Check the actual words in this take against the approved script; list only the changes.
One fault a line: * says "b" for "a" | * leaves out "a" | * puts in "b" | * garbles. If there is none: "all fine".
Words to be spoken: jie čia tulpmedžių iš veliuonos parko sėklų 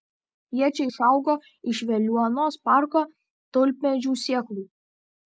* says "išaugo" for "tulpmedžių"
* puts in "tulpmedžių"